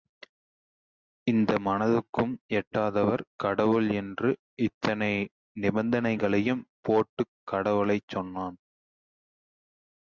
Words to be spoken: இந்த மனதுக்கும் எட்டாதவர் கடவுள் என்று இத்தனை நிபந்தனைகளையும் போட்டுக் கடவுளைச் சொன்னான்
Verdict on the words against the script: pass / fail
pass